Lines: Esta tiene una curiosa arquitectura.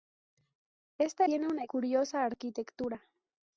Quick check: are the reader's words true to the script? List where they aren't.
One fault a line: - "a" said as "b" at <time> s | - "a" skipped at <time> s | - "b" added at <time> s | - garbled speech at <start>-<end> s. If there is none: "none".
none